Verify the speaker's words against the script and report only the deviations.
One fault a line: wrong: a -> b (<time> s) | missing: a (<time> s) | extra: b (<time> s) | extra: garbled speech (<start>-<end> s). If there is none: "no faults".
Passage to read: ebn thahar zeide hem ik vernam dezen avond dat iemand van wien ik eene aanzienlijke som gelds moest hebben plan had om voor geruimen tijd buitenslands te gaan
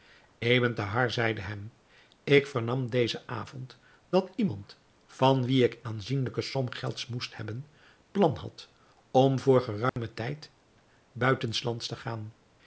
missing: eene (5.8 s)